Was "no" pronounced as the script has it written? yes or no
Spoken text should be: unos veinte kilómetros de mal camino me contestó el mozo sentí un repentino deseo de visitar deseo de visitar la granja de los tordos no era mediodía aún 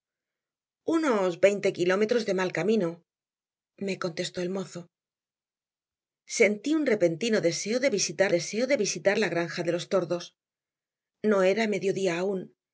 yes